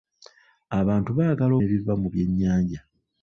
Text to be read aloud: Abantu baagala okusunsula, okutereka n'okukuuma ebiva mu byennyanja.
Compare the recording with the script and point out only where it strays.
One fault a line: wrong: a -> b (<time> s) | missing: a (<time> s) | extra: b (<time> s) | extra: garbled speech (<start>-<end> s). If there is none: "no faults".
missing: okusunsula okutereka n'okukuuma (1.5 s)